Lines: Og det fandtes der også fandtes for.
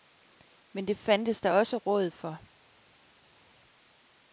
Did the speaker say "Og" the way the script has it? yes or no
no